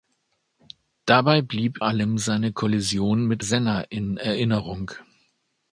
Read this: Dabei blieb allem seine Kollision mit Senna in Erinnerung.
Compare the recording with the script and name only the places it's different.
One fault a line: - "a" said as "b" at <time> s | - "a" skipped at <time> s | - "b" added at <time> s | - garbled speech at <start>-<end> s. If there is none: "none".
none